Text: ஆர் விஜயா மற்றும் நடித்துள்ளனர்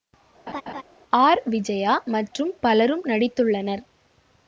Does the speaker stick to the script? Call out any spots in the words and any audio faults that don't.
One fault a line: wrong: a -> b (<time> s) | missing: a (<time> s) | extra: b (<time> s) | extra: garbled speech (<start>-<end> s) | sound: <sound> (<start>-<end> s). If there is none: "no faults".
sound: laugh (0.5-0.8 s)
extra: பலரும் (2.6 s)